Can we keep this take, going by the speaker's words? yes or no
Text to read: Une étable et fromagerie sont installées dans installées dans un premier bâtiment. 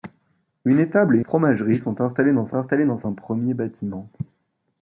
yes